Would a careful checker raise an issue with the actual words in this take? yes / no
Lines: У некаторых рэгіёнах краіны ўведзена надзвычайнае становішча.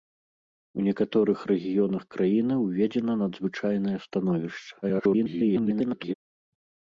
yes